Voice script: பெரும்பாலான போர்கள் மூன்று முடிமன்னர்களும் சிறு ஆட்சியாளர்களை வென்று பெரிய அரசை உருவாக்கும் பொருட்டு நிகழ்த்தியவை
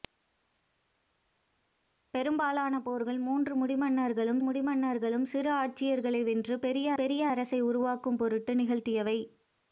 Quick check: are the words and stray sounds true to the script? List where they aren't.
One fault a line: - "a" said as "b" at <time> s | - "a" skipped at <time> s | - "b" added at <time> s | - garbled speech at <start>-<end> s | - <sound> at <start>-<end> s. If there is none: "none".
- "முடிமன்னர்களும்" added at 4.4 s
- "பெரிய" added at 6.9 s